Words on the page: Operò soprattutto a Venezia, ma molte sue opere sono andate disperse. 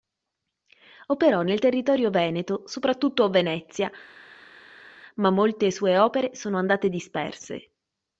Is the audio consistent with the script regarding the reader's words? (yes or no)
no